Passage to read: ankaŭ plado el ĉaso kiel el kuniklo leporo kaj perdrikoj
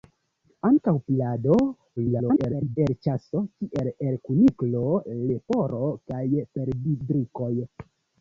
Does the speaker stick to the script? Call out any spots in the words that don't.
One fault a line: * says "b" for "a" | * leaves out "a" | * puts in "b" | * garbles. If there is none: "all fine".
* garbles